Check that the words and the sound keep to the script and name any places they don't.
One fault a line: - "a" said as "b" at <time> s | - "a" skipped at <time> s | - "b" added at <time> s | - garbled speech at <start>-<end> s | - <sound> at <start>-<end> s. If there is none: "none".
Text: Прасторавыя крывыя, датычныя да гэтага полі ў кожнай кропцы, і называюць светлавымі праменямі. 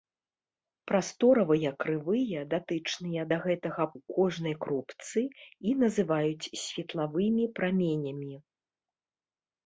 - "полі" skipped at 3.9 s